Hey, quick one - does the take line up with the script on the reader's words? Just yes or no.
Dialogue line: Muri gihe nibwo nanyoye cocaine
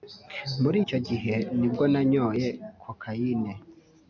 no